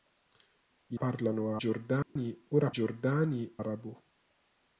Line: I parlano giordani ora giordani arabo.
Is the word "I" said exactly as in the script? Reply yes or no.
yes